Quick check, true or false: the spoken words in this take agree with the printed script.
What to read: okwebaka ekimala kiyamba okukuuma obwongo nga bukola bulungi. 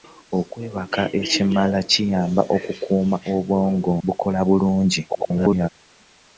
false